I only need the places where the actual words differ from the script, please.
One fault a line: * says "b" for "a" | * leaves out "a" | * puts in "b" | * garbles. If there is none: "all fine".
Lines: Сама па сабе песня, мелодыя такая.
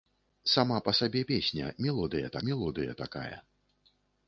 * puts in "мелодыя"